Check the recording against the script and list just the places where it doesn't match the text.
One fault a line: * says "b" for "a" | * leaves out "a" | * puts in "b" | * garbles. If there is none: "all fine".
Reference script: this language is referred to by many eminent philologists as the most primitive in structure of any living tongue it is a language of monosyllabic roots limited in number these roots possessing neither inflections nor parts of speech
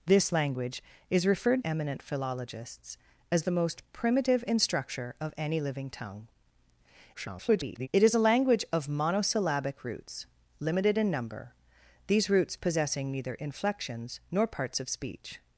* leaves out "to by many"
* garbles